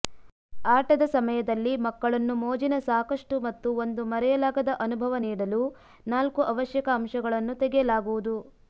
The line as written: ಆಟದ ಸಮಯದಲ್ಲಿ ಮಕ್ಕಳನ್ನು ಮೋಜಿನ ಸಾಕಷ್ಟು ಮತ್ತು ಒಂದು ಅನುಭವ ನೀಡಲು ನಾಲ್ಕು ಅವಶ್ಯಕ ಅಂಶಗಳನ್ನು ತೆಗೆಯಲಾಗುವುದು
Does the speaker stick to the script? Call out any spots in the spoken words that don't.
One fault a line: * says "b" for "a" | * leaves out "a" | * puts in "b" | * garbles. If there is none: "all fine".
* puts in "ಮರೆಯಲಾಗದ"